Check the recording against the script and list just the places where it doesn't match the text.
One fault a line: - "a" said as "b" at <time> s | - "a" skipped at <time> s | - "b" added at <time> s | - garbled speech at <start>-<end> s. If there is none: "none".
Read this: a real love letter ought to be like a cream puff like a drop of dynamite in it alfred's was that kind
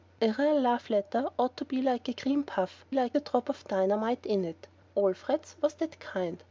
none